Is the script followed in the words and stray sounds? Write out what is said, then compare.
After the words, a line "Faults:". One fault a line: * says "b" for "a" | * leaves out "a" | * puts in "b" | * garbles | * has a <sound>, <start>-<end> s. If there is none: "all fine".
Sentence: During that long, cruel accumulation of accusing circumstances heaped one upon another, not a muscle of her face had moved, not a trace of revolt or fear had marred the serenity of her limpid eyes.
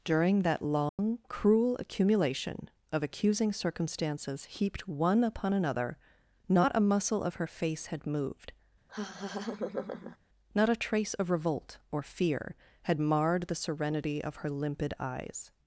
During that long, cruel accumulation of accusing circumstances heaped one upon another, not a muscle of her face had moved, not a trace of revolt or fear had marred the serenity of her limpid eyes.
Faults:
* has a dropout, 0.9-1.0 s
* has a laugh, 8.9-10.2 s